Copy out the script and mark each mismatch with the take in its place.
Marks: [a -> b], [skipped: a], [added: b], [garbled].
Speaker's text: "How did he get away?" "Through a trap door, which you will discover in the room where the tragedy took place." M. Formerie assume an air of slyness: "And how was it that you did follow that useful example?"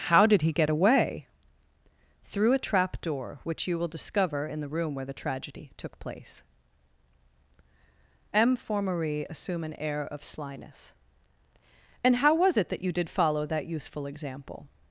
"How did he get away?" "Through a trap door, which you will discover in the room where the tragedy took place." M. Formerie assume an air of slyness: "And how was it that you did follow that useful example?"